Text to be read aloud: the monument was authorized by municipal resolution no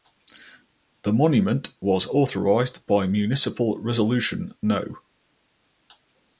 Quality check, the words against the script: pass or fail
pass